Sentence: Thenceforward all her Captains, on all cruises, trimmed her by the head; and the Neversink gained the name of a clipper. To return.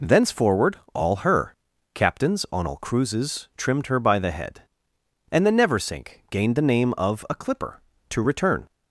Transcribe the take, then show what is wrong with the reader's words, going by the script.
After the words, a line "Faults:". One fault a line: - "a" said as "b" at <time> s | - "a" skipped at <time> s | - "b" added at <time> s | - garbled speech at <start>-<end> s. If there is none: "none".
Thenceforward all her Captains, on all cruises, trimmed her by the head; and the Neversink gained the name of a clipper. To return.
Faults:
none